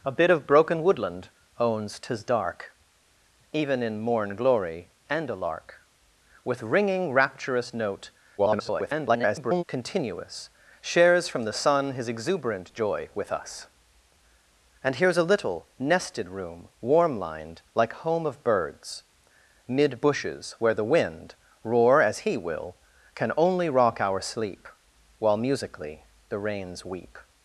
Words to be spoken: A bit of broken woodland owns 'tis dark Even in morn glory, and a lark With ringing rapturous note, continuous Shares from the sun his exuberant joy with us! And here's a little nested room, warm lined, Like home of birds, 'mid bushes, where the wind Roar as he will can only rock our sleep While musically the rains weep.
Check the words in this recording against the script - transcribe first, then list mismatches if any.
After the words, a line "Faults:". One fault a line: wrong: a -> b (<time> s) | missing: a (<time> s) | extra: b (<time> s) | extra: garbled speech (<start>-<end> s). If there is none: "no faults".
A bit of broken woodland owns 'tis dark Even in morn glory, and a lark With ringing rapturous note, [garbled] continuous Shares from the sun his exuberant joy with us! And here's a little nested room, warm lined, Like home of birds, 'mid bushes, where the wind Roar as he will can only rock our sleep While musically the rains weep.
Faults:
extra: garbled speech (8.4-9.6 s)